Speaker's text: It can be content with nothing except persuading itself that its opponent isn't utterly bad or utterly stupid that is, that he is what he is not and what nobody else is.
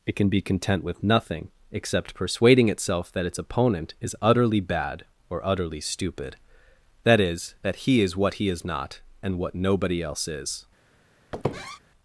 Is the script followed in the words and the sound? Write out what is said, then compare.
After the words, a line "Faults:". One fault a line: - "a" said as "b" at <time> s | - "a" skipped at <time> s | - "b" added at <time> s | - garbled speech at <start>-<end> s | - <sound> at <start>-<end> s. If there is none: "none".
It can be content with nothing except persuading itself that its opponent is utterly bad or utterly stupid that is, that he is what he is not and what nobody else is.
Faults:
- "isn't" said as "is" at 4.0 s
- squeak at 11.3-11.8 s